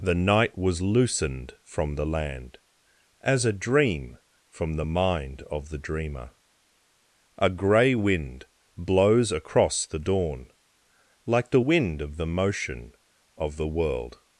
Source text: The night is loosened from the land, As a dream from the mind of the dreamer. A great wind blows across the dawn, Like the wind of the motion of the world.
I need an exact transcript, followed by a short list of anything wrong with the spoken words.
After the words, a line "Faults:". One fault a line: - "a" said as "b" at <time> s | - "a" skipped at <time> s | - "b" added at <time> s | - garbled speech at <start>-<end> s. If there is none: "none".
The night was loosened from the land, As a dream from the mind of the dreamer. A grey wind blows across the dawn, Like the wind of the motion of the world.
Faults:
- "is" said as "was" at 0.6 s
- "great" said as "grey" at 7.5 s